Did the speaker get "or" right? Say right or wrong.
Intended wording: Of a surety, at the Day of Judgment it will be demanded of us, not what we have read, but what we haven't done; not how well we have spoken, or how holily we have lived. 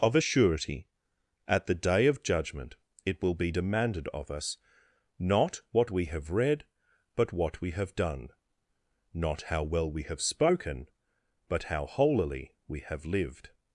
wrong